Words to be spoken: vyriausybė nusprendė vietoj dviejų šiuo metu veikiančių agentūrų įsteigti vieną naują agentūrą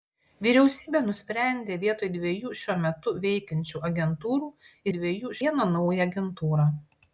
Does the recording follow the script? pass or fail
fail